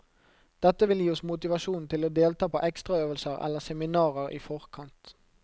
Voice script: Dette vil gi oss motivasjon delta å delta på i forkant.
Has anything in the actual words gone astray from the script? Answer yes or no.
yes